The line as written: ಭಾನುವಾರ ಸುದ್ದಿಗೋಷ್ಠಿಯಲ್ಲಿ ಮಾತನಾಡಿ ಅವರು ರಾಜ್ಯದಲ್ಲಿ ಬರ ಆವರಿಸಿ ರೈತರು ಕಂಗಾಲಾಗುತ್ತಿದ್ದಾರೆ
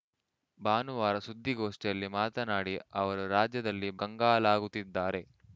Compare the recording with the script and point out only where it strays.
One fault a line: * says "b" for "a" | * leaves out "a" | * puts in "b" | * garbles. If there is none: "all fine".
* leaves out "ಬರ ಆವರಿಸಿ ರೈತರು"